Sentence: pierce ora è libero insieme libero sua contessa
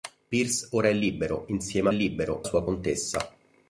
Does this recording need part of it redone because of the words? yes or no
no